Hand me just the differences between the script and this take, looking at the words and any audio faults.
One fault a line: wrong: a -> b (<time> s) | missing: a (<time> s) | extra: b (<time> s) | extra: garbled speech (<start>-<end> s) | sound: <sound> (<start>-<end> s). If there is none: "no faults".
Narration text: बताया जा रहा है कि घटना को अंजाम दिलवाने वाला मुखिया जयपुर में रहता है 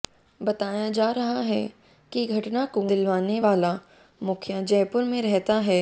missing: अंजाम (2.9 s)